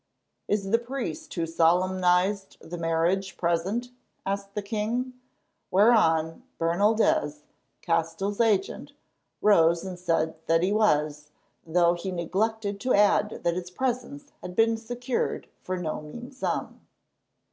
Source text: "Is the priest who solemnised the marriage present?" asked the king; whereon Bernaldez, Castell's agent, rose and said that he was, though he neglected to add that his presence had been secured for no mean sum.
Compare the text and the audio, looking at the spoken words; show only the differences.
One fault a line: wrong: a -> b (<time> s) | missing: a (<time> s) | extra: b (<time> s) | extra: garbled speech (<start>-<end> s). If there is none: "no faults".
no faults